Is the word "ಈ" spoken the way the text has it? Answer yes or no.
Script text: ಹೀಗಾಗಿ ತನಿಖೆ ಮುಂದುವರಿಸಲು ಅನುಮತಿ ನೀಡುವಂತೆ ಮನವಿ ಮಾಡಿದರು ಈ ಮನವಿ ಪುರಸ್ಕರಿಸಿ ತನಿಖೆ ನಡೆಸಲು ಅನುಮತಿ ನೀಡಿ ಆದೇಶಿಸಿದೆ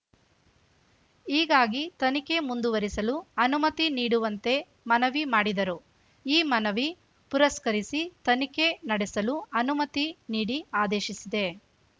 yes